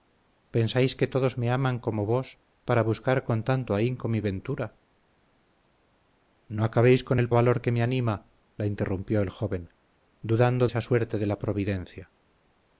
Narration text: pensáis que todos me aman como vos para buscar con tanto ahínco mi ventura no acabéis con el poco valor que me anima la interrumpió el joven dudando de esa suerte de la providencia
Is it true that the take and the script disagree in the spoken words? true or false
true